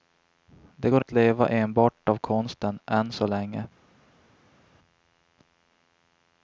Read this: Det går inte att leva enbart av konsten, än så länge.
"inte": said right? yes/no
no